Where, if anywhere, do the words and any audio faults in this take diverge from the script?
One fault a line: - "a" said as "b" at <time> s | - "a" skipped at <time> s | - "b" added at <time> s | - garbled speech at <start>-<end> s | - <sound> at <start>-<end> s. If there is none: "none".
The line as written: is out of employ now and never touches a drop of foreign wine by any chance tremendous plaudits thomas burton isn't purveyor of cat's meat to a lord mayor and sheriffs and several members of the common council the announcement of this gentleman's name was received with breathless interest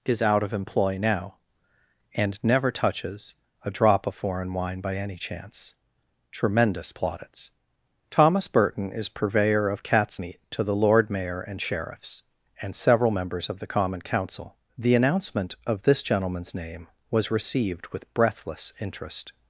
- "isn't" said as "is" at 8.9 s
- "a" said as "the" at 10.6 s